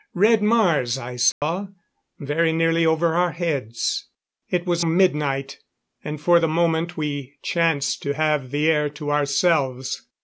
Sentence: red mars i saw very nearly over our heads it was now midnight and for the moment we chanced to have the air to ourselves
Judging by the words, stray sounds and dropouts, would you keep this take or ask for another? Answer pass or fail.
fail